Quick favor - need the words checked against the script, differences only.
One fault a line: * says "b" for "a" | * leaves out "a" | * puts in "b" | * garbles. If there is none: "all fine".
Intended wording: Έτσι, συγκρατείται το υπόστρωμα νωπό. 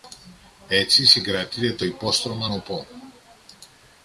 all fine